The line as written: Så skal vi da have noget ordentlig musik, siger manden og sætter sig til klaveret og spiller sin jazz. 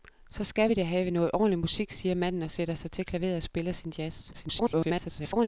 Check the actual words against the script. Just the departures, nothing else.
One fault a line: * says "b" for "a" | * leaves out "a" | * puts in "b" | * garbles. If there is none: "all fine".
* garbles